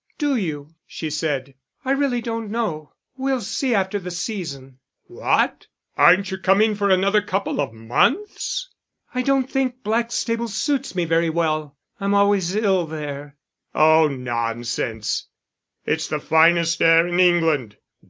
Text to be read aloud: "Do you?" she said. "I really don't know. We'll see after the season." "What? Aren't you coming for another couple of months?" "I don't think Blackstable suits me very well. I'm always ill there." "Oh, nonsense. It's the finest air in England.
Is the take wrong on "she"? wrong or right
right